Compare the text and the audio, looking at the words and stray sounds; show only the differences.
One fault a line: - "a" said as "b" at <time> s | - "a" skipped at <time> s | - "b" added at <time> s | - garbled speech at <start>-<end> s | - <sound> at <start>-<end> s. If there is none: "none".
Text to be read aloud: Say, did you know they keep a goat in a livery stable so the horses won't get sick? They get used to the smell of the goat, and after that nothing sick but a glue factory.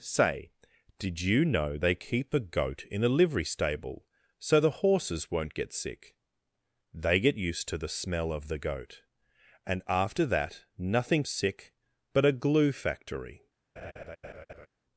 - laugh at 13.8-14.7 s